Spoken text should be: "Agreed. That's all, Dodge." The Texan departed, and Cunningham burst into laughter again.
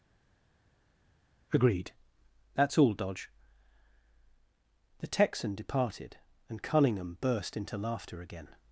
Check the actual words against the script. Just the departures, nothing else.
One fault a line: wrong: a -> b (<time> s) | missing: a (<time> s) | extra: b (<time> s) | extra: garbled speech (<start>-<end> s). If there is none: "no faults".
no faults